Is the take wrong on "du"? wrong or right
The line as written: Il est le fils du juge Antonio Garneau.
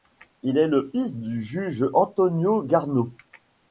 right